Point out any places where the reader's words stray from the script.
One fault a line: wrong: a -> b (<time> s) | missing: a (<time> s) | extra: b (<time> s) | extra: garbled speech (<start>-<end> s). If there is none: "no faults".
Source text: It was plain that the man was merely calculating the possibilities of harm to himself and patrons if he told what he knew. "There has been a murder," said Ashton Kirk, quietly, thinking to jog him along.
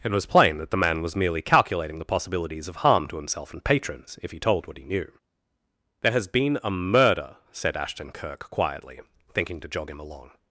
no faults